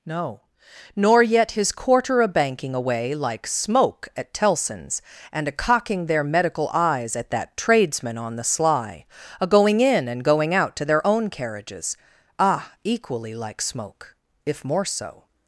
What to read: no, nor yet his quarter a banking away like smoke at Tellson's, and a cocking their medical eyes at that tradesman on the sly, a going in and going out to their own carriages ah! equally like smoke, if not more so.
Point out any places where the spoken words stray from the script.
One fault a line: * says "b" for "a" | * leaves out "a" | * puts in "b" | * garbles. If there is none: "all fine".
* leaves out "not"